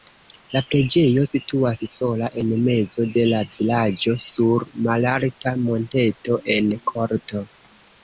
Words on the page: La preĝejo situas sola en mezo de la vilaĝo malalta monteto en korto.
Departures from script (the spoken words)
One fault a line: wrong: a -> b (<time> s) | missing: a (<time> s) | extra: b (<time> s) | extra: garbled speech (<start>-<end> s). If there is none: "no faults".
extra: sur (4.3 s)